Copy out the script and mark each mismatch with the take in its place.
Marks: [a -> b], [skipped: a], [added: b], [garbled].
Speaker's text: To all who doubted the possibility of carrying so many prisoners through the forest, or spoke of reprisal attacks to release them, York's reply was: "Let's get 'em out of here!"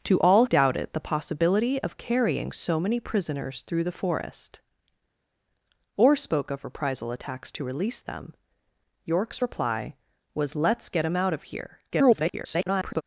To all [skipped: who] doubted the possibility of carrying so many prisoners through the forest, or spoke of reprisal attacks to release them, York's reply was: "Let's get 'em out of here!" [garbled]